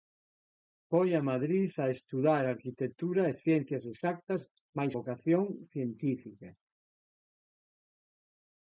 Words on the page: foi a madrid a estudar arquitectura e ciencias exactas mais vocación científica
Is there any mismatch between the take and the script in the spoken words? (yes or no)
no